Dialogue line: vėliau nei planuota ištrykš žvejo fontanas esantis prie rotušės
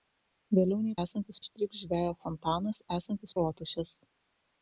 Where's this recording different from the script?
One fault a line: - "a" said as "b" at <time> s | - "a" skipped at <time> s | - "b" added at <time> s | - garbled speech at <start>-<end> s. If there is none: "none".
- "planuota" said as "esantis" at 1.1 s
- "prie" skipped at 3.4 s